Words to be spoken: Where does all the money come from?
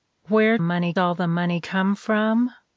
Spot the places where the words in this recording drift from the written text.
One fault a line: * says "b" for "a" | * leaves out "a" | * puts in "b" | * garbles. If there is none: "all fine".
* says "money" for "does"